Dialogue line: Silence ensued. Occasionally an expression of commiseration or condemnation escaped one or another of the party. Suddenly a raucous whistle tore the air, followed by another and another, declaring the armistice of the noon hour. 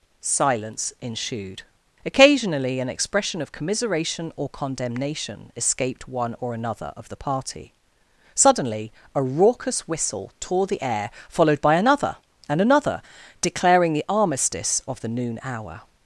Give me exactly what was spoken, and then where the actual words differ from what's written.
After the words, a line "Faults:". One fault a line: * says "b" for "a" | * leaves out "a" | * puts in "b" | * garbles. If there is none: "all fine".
Silence ensued. Occasionally an expression of commiseration or condemnation escaped one or another of the party. Suddenly a raucous whistle tore the air, followed by another and another, declaring the armistice of the noon hour.
Faults:
all fine